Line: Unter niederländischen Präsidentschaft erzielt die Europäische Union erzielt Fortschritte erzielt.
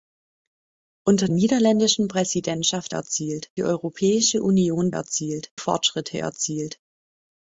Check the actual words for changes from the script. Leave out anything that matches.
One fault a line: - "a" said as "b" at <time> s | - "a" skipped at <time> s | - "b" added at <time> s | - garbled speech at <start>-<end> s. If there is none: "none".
none